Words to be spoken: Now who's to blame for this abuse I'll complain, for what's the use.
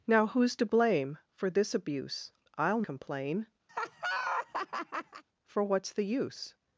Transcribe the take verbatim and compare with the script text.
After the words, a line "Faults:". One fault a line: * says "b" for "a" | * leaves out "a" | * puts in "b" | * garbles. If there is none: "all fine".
Now who's to blame for this abuse I'll complain, for what's the use.
Faults:
all fine